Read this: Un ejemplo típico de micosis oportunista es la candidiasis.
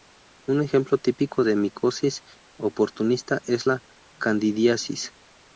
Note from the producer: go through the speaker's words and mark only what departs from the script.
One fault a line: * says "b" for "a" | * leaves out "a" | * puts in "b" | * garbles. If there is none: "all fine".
all fine